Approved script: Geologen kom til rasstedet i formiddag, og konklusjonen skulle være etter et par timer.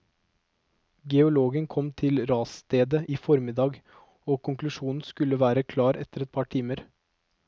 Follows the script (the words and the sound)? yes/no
no